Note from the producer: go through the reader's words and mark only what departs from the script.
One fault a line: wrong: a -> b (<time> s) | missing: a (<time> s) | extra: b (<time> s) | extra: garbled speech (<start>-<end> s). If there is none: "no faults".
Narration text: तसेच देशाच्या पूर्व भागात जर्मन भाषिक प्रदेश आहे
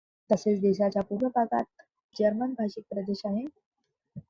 no faults